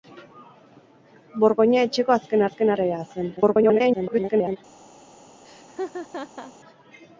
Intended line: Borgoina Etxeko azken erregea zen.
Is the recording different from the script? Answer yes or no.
yes